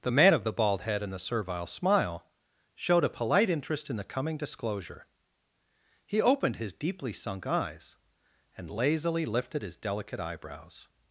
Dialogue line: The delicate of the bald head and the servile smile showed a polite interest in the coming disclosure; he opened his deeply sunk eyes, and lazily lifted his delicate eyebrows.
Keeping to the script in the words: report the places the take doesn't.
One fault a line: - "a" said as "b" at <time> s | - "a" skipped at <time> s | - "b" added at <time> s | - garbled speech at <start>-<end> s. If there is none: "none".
- "delicate" said as "man" at 0.1 s